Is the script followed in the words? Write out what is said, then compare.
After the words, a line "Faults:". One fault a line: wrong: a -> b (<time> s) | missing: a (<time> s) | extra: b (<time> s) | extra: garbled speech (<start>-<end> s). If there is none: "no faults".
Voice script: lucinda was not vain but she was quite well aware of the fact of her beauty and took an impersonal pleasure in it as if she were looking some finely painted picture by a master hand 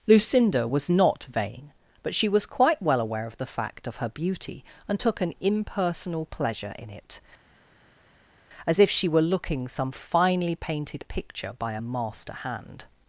lucinda was not vain but she was quite well aware of the fact of her beauty and took an impersonal pleasure in it as if she were looking some finely painted picture by a master hand
Faults:
no faults